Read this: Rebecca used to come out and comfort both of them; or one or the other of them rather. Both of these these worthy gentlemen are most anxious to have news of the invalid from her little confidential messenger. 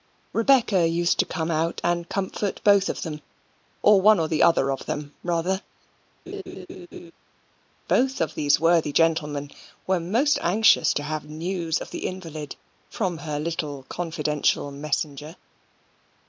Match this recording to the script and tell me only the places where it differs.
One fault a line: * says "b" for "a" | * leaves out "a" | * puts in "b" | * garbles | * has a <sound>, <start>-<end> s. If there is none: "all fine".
* has a laugh, 6.3-7.1 s
* leaves out "these"
* says "were" for "are"